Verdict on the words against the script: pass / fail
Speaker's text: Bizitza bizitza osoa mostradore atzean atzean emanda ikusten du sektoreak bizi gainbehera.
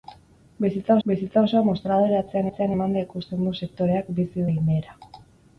pass